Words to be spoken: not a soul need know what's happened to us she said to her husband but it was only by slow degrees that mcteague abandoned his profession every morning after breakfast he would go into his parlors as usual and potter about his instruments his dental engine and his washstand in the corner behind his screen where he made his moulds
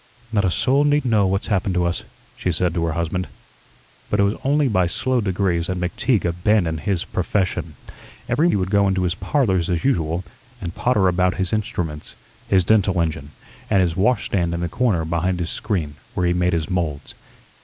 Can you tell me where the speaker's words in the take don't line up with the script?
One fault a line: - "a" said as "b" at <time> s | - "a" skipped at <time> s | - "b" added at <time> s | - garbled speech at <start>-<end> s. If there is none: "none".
- "morning after breakfast" skipped at 8.5 s